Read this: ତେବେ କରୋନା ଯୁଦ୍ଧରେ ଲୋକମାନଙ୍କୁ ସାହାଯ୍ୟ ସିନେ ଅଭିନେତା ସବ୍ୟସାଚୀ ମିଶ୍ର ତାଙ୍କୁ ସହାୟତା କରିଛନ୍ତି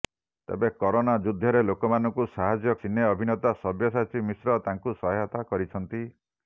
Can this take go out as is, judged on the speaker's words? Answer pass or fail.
pass